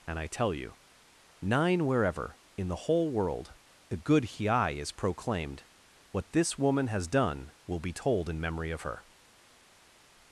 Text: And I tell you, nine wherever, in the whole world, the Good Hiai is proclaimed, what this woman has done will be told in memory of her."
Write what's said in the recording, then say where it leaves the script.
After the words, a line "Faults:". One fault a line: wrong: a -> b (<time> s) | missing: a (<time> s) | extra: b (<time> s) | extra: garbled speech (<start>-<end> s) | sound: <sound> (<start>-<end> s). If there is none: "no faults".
And I tell you, nine wherever, in the whole world, the Good Hiai is proclaimed, what this woman has done will be told in memory of her."
Faults:
no faults